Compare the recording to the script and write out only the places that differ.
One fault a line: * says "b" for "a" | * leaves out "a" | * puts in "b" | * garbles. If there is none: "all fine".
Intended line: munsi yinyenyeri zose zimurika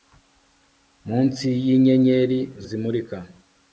* leaves out "zose"